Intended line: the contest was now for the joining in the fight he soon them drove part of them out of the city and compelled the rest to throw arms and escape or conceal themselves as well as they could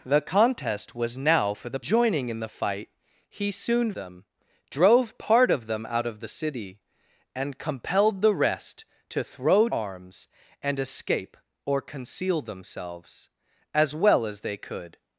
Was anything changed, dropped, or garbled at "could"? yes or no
no